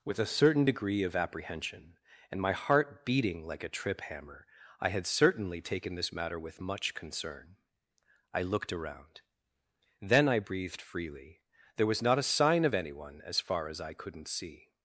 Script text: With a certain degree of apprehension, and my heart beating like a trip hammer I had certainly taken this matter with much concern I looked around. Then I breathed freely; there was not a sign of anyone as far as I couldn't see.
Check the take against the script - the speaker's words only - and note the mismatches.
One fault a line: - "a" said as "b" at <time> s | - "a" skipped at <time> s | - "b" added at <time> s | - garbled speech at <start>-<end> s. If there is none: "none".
none